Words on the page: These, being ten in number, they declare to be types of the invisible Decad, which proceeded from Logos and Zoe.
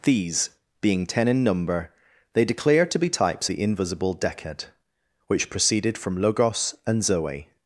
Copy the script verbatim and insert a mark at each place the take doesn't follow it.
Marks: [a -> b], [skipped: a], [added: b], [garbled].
These, being ten in number, they declare to be types [skipped: of] the invisible Decad, which proceeded from Logos and Zoe.